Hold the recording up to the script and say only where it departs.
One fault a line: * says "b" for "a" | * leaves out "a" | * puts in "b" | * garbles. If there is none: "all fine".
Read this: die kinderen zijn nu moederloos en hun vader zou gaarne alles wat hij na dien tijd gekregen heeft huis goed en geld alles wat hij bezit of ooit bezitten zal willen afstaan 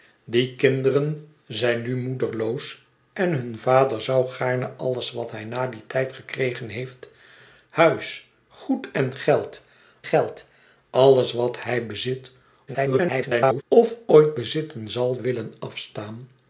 * puts in "geld"
* garbles